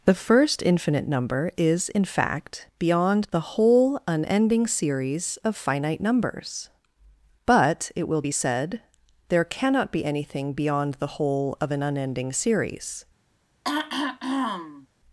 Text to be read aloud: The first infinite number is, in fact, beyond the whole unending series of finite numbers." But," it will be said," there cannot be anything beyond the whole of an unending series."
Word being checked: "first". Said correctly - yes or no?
yes